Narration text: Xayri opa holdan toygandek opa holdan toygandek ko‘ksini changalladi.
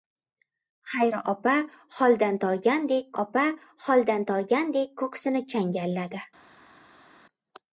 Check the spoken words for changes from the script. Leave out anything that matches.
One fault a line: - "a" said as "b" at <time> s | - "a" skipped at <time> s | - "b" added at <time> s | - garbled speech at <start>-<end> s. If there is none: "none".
none